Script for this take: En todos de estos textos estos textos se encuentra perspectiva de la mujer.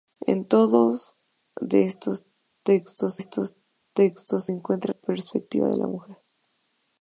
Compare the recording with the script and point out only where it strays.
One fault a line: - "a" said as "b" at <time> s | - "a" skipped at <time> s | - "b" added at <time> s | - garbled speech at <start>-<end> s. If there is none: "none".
none